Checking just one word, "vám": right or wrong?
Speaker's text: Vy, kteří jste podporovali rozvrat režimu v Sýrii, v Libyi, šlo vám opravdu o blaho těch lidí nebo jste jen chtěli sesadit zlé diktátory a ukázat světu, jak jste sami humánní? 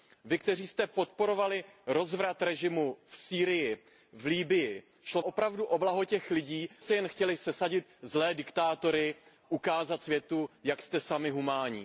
wrong